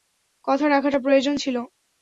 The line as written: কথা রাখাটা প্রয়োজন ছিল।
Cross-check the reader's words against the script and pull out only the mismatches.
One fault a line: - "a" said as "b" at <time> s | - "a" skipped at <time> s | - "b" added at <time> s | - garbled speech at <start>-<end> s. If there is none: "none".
none